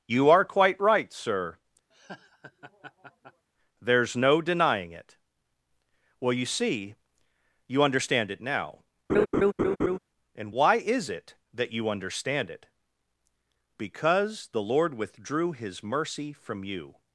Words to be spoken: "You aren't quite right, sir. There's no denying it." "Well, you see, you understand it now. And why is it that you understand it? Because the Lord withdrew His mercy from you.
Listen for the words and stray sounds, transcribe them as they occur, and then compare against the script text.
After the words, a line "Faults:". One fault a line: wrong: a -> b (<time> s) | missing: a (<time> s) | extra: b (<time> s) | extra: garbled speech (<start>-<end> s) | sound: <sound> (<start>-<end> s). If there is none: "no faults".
"You are quite right, sir. There's no denying it." "Well, you see, you understand it now. And why is it that you understand it? Because the Lord withdrew His mercy from you.
Faults:
wrong: aren't -> are (0.3 s)
sound: laugh (1.9-3.5 s)
sound: laugh (9.1-10.0 s)